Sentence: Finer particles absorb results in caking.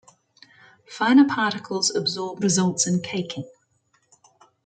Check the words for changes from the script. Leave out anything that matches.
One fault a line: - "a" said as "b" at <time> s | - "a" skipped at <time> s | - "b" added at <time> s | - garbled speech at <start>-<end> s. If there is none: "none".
none